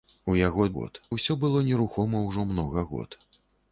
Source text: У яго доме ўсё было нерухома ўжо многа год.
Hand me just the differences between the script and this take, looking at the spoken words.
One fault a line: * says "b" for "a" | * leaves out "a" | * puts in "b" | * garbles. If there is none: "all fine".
* says "год" for "доме"